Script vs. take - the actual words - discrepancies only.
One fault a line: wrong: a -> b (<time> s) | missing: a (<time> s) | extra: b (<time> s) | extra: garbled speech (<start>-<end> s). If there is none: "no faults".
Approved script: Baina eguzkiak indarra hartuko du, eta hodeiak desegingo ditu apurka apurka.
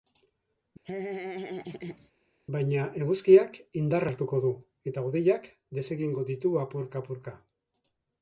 no faults